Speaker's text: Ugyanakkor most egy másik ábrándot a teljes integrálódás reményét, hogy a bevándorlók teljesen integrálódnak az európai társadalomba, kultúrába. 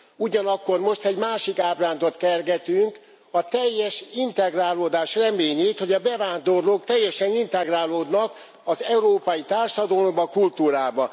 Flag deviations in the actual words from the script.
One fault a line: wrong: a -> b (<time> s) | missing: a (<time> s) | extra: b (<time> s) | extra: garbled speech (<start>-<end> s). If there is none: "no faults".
extra: kergetünk (2.2 s)